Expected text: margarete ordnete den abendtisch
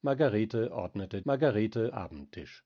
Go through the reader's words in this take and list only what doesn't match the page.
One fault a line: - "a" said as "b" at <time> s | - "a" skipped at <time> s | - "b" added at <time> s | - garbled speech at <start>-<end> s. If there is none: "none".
- "den" said as "margarete" at 1.2 s